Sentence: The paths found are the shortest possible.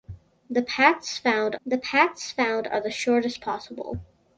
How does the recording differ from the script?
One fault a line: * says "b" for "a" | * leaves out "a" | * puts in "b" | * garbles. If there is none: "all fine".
* puts in "the paths found"